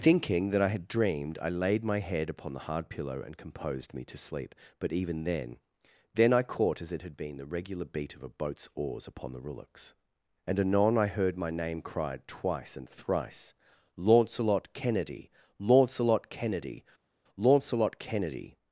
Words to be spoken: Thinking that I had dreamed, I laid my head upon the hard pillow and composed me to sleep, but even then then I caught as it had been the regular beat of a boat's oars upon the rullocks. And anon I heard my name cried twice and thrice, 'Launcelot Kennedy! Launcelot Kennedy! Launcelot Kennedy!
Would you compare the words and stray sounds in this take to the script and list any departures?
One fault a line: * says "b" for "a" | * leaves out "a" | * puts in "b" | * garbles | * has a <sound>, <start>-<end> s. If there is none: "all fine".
all fine